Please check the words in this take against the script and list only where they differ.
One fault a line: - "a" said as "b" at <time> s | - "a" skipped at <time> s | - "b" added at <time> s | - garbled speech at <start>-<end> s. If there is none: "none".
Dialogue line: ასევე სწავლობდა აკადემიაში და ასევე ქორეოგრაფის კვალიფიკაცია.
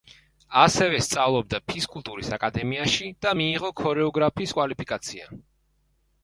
- "ფიზკულტურის" added at 1.7 s
- "ასევე" said as "მიიღო" at 3.4 s